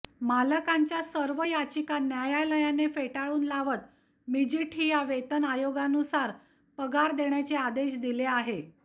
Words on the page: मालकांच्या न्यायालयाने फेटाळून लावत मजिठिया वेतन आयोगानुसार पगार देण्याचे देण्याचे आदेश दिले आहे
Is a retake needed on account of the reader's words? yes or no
yes